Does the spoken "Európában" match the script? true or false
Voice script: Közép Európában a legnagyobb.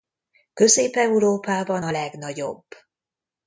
true